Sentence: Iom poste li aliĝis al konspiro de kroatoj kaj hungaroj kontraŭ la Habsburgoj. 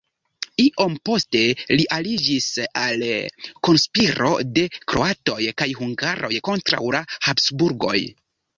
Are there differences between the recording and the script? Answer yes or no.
no